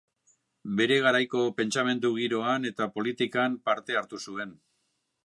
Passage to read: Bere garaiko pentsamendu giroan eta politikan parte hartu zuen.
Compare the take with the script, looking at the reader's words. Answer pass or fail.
pass